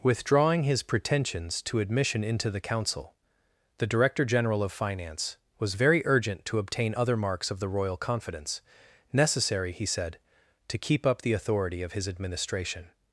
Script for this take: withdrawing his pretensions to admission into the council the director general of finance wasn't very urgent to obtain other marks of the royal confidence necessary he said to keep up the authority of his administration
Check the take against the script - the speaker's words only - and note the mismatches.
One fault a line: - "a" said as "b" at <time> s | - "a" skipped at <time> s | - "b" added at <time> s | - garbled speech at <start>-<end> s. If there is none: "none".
- "wasn't" said as "was" at 5.6 s